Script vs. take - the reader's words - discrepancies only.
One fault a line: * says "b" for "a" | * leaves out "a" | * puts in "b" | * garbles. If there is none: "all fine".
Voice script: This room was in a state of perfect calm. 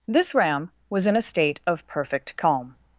* says "ram" for "room"